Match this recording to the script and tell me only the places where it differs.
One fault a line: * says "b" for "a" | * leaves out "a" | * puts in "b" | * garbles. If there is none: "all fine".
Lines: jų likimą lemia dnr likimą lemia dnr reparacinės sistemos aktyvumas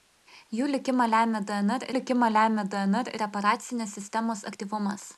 all fine